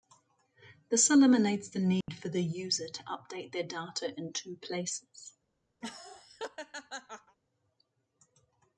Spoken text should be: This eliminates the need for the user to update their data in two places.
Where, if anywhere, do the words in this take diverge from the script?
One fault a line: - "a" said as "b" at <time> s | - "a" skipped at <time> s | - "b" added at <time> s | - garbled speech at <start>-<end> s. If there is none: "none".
none